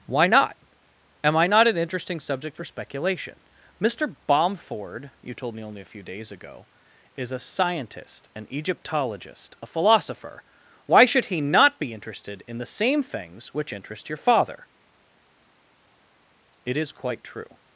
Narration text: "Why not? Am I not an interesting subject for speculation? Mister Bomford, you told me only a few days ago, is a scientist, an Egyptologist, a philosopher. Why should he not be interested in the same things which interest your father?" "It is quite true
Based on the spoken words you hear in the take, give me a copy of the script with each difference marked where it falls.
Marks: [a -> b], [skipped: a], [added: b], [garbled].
"Why not? Am I not an interesting subject for speculation? Mister Bomford, you told me only a few days ago, is a scientist, an Egyptologist, a philosopher. Why should he not be interested in the same things which interest your father?" "It is quite true